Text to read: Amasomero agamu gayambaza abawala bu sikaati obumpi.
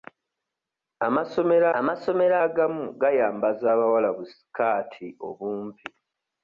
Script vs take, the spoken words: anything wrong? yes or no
yes